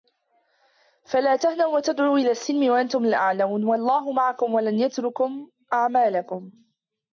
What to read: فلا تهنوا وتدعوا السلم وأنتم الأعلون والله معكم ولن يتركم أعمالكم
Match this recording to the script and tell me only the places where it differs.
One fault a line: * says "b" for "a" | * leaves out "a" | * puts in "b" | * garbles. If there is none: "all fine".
* puts in "إلى"